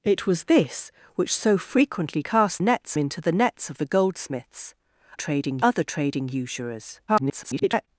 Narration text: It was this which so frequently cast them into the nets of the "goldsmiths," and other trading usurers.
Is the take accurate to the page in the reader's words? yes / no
no